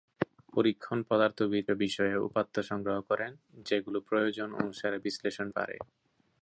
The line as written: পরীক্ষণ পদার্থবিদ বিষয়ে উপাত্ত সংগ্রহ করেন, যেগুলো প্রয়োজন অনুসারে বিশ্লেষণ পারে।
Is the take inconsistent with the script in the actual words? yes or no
no